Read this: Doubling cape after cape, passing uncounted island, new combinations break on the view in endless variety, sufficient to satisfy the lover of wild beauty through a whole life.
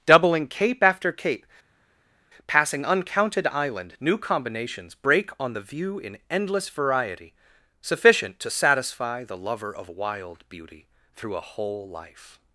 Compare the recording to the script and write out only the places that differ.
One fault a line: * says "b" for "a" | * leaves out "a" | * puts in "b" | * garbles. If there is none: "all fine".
all fine